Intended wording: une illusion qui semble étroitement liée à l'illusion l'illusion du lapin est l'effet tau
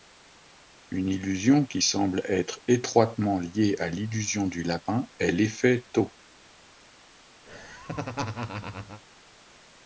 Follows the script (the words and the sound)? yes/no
no